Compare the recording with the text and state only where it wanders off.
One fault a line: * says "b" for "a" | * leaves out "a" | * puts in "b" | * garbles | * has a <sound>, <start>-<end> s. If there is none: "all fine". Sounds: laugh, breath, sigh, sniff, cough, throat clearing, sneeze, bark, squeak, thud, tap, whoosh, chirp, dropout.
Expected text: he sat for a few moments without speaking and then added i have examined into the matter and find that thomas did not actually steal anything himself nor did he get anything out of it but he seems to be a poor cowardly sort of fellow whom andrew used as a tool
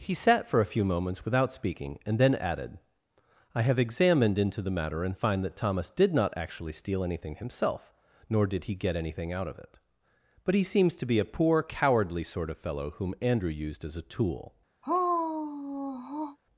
* has a sigh, 14.8-16.4 s